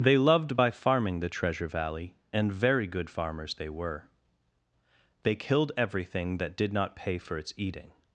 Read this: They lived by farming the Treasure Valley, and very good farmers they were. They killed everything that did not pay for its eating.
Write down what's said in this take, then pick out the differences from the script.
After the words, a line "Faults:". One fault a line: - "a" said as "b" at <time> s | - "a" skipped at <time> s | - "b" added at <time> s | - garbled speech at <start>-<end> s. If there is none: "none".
They loved by farming the Treasure Valley, and very good farmers they were. They killed everything that did not pay for its eating.
Faults:
- "lived" said as "loved" at 0.2 s